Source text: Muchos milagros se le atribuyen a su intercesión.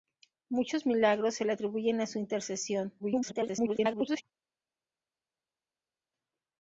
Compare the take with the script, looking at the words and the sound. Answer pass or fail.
fail